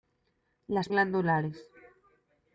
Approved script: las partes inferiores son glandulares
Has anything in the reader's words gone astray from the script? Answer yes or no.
yes